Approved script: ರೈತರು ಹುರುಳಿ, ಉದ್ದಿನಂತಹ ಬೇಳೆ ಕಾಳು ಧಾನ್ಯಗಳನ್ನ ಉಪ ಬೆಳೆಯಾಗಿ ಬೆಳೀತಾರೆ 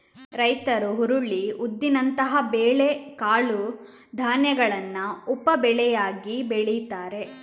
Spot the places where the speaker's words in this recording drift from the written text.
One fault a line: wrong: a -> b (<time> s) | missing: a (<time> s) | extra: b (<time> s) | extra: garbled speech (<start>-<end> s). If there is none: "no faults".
no faults